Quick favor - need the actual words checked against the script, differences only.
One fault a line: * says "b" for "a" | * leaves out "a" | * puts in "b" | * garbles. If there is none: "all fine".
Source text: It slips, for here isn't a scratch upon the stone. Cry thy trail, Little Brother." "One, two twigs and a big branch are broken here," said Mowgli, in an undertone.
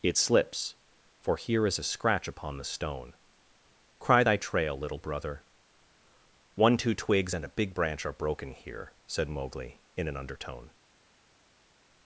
* says "is" for "isn't"